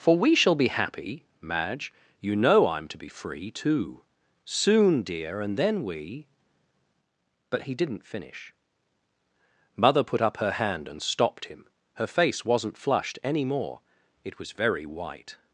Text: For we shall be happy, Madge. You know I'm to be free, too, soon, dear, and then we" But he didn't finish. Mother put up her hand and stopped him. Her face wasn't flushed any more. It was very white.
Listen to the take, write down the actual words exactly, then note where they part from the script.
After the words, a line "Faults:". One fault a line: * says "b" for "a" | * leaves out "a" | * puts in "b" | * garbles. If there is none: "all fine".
For we shall be happy, Madge. You know I'm to be free, too, soon, dear, and then we" But he didn't finish. Mother put up her hand and stopped him. Her face wasn't flushed any more. It was very white.
Faults:
all fine